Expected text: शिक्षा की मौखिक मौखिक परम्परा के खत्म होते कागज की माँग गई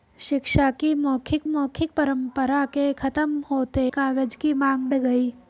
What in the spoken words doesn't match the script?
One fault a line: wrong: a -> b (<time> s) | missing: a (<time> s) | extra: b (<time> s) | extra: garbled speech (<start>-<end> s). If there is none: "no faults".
no faults